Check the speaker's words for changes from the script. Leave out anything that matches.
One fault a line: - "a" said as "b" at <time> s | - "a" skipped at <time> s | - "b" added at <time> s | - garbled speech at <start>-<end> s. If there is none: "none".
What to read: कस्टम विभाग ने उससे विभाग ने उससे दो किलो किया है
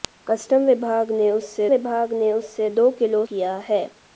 none